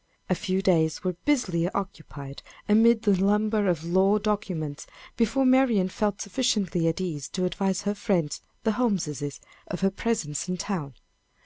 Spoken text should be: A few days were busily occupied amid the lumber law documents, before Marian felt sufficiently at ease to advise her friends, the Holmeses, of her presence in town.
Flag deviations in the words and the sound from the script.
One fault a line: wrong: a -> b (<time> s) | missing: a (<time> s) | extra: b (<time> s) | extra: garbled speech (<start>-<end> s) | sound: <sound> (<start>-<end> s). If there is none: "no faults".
extra: of (3.7 s)